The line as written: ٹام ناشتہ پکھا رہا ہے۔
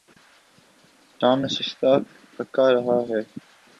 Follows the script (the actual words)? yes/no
yes